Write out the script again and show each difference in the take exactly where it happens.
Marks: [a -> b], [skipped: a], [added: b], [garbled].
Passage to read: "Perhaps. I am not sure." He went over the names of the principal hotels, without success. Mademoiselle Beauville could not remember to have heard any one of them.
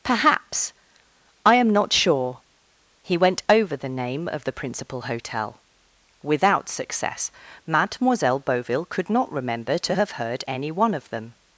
"Perhaps. I am not sure." He went over the [names -> name] of the principal [hotels, -> hotel] without success. Mademoiselle Beauville could not remember to have heard any one of them.